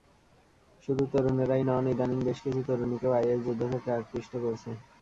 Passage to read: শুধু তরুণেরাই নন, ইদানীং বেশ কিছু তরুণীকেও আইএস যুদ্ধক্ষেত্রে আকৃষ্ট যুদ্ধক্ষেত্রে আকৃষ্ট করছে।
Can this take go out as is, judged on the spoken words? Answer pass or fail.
fail